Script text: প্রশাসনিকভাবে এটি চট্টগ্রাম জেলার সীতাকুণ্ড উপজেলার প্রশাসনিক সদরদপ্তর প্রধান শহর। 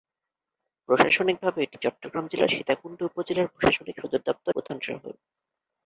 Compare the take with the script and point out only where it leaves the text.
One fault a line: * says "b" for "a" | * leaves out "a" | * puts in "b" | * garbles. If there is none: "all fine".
all fine